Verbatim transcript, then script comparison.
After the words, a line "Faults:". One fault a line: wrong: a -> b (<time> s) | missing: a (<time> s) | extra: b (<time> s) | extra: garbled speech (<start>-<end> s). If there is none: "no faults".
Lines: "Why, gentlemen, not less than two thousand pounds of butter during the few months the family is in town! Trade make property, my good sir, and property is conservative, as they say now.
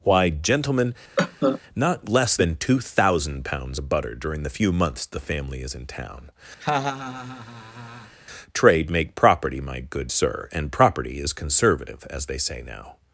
"Why, gentlemen, not less than two thousand pounds of butter during the few months the family is in town! Trade make property, my good sir, and property is conservative, as they say now.
Faults:
no faults